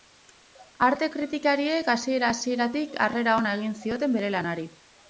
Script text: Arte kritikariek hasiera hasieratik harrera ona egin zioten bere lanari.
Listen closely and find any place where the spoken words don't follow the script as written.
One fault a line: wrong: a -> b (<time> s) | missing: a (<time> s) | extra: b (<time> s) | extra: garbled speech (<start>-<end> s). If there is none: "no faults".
no faults